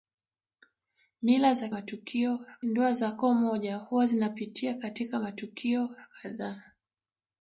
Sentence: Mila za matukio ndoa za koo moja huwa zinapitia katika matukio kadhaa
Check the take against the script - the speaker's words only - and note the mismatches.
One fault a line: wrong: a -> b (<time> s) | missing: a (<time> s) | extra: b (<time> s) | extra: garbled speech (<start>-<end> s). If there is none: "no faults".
no faults